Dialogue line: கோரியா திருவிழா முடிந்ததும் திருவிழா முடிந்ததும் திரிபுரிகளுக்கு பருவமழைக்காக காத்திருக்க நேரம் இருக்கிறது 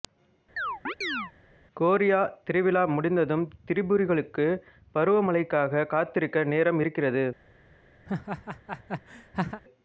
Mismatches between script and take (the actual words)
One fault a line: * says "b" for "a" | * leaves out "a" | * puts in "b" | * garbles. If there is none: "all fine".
* leaves out "திருவிழா முடிந்ததும்"